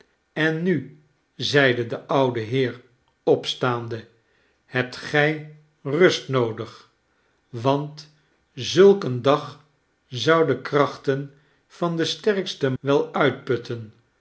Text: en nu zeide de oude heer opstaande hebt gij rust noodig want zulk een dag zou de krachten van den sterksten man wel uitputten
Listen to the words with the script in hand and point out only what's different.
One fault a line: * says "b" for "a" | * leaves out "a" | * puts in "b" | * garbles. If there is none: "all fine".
* leaves out "man"